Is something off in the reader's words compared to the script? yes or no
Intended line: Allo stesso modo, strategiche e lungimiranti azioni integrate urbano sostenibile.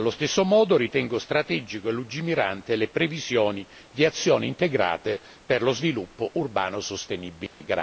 yes